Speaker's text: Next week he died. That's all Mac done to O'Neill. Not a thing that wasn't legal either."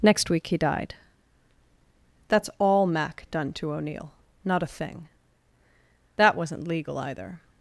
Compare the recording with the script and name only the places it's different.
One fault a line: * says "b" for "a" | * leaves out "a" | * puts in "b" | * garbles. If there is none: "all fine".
all fine